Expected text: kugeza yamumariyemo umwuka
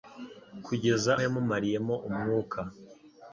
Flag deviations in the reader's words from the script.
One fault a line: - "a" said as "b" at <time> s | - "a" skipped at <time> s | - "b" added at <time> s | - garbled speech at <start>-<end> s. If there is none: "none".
none